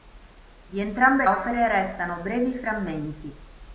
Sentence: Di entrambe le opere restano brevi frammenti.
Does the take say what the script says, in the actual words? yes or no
no